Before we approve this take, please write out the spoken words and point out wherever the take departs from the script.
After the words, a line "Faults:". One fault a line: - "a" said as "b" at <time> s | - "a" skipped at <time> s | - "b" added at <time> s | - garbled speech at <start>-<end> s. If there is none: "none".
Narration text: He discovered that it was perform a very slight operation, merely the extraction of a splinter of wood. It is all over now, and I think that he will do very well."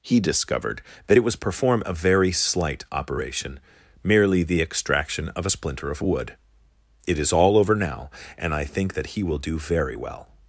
He discovered that it was perform a very slight operation, merely the extraction of a splinter of wood. It is all over now, and I think that he will do very well."
Faults:
none